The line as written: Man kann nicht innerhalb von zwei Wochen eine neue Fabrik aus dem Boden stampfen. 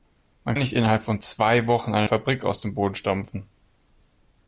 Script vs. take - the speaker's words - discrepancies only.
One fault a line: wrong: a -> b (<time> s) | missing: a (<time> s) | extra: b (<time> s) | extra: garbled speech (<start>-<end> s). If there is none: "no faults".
missing: kann (0.6 s)
missing: neue (2.1 s)